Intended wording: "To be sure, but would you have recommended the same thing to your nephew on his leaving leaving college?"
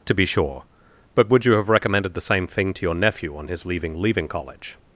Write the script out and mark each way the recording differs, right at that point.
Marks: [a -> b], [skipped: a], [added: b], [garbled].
"To be sure, but would you have recommended the same thing to your nephew on his leaving leaving college?"